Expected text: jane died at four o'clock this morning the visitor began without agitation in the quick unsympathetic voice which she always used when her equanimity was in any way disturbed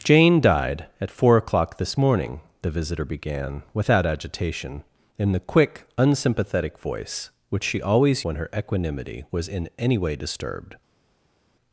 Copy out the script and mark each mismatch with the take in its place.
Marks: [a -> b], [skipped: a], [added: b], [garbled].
jane died at four o'clock this morning the visitor began without agitation in the quick unsympathetic voice which she always [skipped: used] when her equanimity was in any way disturbed